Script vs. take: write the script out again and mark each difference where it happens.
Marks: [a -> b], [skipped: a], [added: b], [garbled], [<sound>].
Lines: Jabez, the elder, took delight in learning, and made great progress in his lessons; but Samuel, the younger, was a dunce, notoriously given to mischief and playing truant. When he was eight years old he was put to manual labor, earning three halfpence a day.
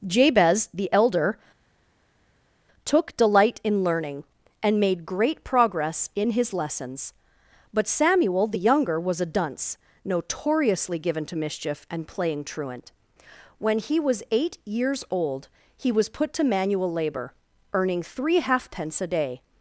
Jabez, the elder, took delight in learning, and made great progress in his lessons; but Samuel, the younger, was a dunce, notoriously given to mischief and playing truant. When he was eight years old he was put to manual labor, earning three halfpence a day.